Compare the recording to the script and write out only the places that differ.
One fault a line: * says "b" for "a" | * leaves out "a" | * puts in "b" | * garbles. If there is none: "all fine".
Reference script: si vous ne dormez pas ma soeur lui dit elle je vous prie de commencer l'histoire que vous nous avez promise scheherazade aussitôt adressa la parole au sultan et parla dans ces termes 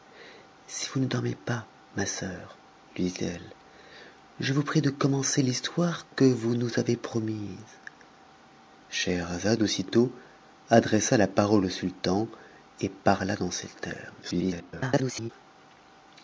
* garbles